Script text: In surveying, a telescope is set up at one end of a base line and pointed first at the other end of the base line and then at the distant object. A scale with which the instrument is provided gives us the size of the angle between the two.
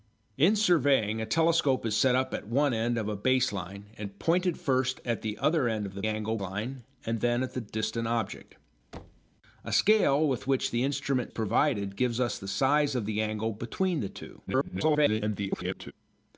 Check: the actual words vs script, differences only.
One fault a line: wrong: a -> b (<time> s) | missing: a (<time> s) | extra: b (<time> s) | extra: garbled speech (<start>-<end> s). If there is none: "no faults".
wrong: base -> angle (6.0 s)
missing: is (11.3 s)
extra: garbled speech (14.5-15.9 s)